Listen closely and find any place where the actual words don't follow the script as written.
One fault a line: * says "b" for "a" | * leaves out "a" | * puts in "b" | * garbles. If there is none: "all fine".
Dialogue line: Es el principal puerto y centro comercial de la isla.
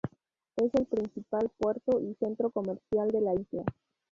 all fine